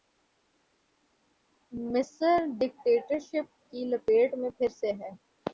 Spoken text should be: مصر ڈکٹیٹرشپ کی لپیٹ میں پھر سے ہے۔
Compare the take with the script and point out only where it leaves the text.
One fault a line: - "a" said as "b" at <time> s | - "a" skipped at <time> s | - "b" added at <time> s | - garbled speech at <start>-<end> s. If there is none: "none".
none